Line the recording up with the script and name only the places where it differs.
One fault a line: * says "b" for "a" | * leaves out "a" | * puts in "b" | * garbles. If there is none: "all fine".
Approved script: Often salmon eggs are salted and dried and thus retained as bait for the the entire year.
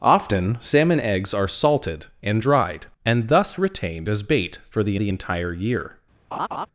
all fine